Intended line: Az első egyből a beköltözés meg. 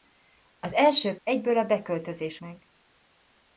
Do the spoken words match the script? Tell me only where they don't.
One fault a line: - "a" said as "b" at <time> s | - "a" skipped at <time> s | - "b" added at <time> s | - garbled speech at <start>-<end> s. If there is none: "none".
none